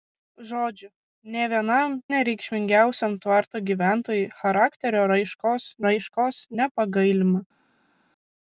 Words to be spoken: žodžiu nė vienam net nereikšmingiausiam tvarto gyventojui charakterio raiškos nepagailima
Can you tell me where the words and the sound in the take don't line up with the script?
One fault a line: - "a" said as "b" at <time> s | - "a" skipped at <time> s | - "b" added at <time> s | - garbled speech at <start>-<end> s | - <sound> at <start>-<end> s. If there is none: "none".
- "net" skipped at 1.9 s
- "raiškos" added at 5.9 s